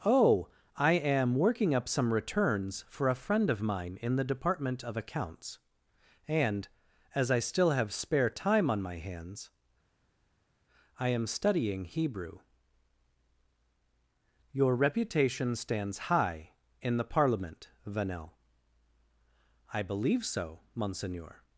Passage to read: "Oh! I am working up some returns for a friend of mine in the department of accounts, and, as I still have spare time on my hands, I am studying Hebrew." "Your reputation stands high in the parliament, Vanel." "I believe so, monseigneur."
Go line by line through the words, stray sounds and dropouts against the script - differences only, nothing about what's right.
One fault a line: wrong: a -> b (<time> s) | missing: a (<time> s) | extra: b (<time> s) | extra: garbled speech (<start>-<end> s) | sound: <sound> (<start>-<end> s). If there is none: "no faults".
no faults